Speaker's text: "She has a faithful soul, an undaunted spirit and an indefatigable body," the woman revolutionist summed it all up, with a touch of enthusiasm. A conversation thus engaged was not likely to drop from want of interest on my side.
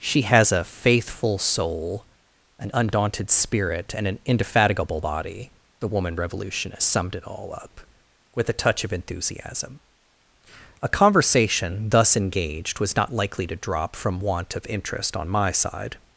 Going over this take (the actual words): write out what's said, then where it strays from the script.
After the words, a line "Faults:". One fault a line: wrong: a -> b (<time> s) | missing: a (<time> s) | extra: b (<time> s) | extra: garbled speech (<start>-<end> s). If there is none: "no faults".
"She has a faithful soul, an undaunted spirit and an indefatigable body," the woman revolutionist summed it all up, with a touch of enthusiasm. A conversation thus engaged was not likely to drop from want of interest on my side.
Faults:
no faults